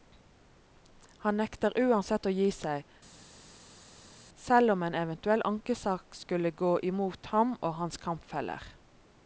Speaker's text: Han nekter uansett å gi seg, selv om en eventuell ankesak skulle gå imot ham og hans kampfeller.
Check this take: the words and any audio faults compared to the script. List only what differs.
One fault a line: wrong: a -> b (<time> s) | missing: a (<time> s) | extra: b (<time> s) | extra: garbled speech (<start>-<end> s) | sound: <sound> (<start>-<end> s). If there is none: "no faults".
no faults